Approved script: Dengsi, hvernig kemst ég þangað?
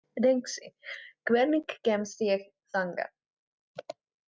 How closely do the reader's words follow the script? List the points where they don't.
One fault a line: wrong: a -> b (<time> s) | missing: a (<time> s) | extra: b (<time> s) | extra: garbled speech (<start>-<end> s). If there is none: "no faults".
no faults